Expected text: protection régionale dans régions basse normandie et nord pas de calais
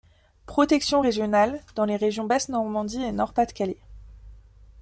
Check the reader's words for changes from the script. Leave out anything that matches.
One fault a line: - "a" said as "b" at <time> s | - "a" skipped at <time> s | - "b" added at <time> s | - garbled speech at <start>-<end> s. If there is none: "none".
- "les" added at 1.8 s